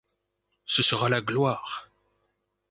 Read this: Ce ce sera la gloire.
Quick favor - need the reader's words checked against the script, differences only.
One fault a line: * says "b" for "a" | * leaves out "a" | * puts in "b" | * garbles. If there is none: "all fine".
* leaves out "ce"